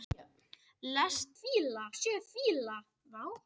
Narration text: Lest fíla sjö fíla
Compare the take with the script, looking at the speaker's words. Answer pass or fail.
pass